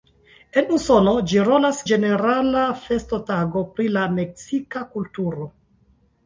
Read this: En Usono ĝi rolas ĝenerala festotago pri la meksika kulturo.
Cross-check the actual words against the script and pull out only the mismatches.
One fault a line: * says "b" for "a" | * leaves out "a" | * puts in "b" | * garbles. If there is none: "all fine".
all fine